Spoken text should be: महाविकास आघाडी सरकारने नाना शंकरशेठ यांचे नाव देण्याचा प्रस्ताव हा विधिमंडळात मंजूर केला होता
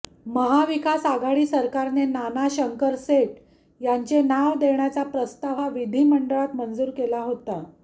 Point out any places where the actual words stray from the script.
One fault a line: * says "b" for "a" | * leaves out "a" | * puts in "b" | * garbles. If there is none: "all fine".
all fine